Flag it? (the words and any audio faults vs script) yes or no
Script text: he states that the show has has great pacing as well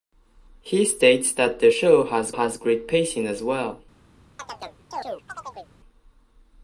yes